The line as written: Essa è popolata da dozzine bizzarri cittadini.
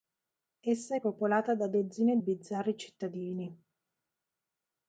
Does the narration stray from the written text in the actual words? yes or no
no